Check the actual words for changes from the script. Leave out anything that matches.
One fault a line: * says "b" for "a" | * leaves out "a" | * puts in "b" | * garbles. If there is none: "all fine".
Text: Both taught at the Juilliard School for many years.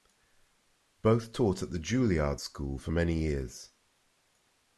all fine